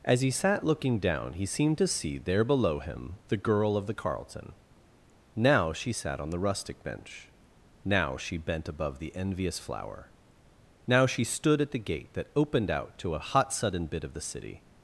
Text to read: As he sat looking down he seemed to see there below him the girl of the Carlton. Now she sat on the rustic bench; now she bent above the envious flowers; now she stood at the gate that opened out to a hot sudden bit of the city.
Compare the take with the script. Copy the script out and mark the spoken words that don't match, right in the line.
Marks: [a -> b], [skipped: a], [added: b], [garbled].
As he sat looking down he seemed to see there below him the girl of the Carlton. Now she sat on the rustic bench; now she bent above the envious [flowers; -> flower] now she stood at the gate that opened out to a hot sudden bit of the city.